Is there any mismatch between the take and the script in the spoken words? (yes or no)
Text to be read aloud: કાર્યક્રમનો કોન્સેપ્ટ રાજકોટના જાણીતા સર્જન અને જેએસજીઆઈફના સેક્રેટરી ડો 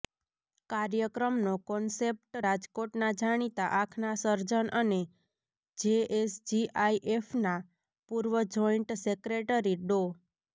yes